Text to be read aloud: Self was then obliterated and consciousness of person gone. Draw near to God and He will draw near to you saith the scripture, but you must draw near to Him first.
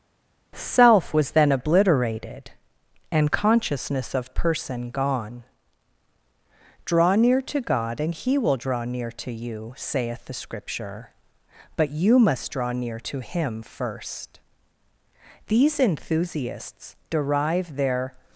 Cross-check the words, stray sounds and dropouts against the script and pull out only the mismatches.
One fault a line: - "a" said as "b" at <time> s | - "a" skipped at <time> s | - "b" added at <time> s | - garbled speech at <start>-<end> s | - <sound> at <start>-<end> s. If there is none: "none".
- "These enthusiasts derive their" added at 15.5 s